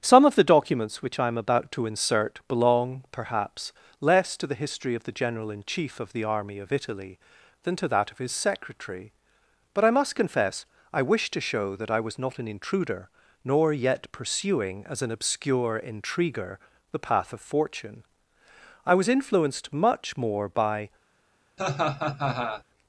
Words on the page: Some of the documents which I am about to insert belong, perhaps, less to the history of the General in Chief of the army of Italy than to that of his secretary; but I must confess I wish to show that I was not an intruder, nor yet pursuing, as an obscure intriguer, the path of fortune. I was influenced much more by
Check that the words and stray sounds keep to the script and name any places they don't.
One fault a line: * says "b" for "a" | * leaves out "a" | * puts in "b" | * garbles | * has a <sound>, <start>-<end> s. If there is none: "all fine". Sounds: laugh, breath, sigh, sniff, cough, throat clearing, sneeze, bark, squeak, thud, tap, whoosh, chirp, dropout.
* has a laugh, 21.6-22.6 s